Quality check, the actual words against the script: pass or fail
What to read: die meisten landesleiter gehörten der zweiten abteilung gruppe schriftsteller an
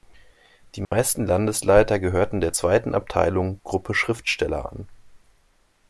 pass